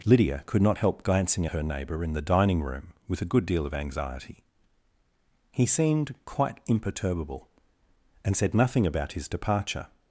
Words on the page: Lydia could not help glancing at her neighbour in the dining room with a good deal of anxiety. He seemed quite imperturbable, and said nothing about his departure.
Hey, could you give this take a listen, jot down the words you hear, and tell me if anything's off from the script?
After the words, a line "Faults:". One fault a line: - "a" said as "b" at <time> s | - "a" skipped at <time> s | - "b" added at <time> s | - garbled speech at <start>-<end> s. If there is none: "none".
Lydia could not help glancing her neighbour in the dining room with a good deal of anxiety. He seemed quite imperturbable, and said nothing about his departure.
Faults:
- "at" skipped at 1.5 s